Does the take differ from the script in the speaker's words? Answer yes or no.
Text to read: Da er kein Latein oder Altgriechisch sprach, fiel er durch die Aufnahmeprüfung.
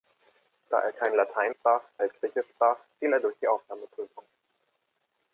yes